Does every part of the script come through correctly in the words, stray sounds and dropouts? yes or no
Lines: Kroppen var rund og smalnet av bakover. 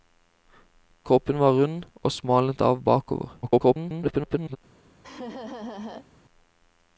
no